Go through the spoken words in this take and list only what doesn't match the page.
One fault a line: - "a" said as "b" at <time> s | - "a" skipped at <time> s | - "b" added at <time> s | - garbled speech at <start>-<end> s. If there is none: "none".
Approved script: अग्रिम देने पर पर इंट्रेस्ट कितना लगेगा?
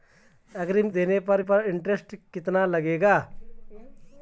none